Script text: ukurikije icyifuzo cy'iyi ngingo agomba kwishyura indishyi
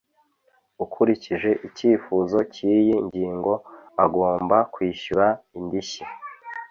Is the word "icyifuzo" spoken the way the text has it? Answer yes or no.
yes